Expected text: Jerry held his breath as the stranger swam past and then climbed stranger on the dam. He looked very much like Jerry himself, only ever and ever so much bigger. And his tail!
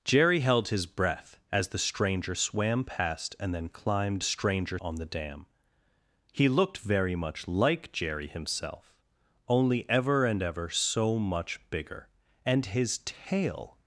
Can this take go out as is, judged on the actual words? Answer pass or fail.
pass